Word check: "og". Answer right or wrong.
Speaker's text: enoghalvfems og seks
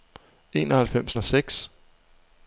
right